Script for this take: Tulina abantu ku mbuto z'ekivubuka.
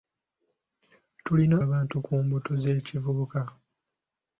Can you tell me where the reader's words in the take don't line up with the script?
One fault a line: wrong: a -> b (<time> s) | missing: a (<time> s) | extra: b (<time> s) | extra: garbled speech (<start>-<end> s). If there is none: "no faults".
no faults